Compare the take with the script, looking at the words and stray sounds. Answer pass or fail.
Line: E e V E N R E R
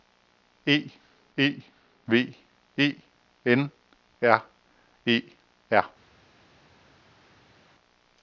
pass